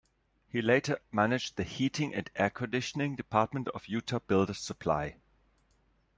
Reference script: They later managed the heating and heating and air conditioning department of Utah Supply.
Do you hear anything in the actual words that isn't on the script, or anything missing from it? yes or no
yes